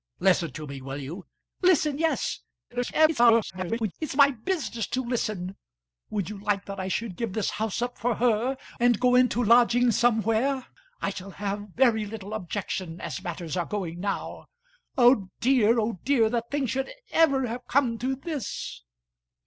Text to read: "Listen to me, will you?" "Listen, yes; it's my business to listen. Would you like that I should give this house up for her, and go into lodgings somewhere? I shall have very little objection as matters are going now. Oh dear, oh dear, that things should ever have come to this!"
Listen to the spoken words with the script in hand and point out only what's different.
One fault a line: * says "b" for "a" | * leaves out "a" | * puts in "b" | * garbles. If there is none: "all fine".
* garbles